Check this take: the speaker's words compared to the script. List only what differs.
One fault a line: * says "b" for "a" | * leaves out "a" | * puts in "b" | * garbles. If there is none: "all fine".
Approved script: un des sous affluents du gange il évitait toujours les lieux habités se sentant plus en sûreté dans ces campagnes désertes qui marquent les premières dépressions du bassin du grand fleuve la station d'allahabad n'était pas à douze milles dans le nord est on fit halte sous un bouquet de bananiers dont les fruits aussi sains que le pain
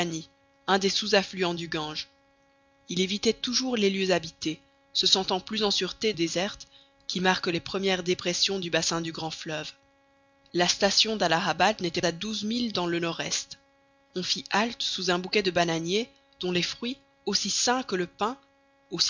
* leaves out "dans ces campagnes"
* leaves out "pas"